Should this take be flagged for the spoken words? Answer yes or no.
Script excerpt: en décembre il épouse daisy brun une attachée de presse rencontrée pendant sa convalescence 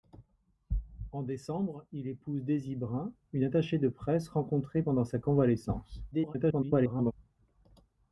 yes